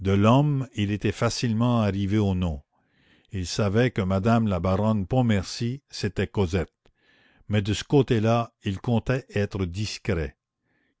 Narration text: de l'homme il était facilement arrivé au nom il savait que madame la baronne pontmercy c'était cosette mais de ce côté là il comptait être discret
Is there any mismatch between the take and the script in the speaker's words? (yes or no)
no